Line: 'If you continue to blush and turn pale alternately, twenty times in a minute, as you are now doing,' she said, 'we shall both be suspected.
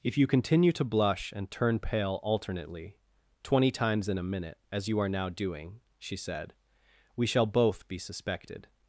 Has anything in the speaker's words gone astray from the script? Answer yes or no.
no